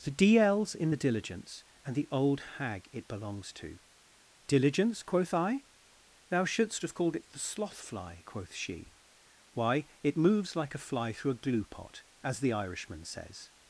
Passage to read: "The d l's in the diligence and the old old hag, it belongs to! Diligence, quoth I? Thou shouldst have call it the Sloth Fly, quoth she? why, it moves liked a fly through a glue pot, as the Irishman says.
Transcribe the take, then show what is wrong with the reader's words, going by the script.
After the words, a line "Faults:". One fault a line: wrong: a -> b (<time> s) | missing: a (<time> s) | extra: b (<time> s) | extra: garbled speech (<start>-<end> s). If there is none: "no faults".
"The d l's in the diligence and the old hag, it belongs to! Diligence, quoth I? Thou shouldst have called it the Sloth Fly, quoth she? why, it moves like a fly through a glue pot, as the Irishman says.
Faults:
missing: old (2.4 s)
wrong: call -> called (6.9 s)
wrong: liked -> like (10.5 s)